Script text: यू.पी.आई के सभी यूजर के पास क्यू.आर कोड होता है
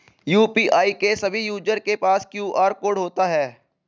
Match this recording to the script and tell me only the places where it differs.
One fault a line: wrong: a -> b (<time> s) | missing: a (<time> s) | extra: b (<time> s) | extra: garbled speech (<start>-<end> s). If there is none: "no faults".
no faults